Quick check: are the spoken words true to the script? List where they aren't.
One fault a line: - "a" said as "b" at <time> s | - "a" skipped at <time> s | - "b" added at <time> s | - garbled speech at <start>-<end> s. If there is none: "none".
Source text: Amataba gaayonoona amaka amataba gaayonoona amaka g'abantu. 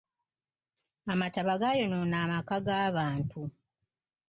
- "amataba gaayonoona amaka" skipped at 2.6 s